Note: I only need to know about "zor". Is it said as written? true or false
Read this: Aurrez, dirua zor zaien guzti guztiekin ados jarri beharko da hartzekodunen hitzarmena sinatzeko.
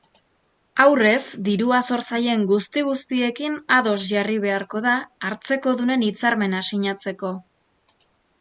true